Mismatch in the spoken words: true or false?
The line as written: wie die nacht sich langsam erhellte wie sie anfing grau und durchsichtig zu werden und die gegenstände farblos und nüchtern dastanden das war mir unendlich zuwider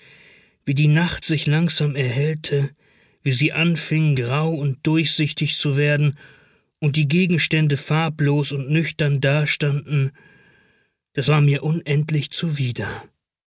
false